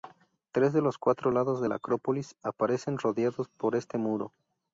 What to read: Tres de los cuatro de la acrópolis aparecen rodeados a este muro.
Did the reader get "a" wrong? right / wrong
wrong